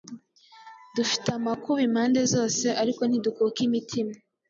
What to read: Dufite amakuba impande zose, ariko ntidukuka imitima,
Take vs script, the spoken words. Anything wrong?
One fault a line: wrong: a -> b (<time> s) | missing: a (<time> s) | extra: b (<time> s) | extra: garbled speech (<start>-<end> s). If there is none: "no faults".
no faults